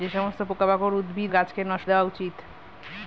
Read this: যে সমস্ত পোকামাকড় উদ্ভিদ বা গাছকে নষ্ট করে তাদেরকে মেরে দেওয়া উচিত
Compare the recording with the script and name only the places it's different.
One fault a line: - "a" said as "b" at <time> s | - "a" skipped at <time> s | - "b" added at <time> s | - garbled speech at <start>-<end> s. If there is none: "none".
- "বা" skipped at 1.3 s
- "করে তাদেরকে মেরে" skipped at 1.9 s